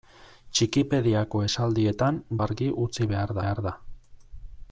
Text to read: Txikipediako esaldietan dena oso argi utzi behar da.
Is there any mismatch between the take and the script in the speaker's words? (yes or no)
yes